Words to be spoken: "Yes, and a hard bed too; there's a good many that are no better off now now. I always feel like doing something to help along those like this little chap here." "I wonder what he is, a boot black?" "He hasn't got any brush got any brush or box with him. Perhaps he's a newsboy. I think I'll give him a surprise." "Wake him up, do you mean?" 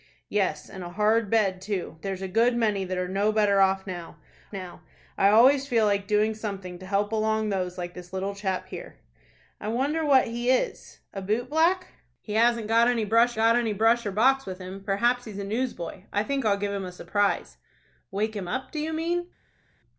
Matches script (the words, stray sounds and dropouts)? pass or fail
pass